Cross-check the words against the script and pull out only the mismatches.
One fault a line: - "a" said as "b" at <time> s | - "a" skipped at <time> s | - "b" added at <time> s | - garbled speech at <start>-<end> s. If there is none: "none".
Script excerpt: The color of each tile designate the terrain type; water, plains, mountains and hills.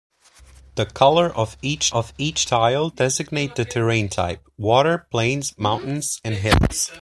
- "of each" added at 1.9 s